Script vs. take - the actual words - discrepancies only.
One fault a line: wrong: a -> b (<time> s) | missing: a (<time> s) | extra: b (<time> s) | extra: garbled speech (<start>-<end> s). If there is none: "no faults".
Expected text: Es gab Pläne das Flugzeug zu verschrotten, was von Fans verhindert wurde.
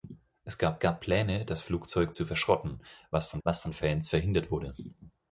extra: gab (0.8 s)
extra: was von (3.4 s)